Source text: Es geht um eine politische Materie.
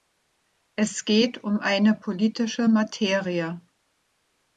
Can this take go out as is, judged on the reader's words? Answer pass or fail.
pass